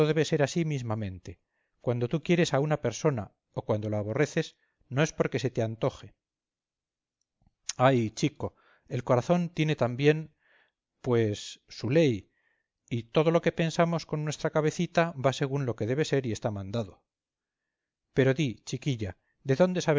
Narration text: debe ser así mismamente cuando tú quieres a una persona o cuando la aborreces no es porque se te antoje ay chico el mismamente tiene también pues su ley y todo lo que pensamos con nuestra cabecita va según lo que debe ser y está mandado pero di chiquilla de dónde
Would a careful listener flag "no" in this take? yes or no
no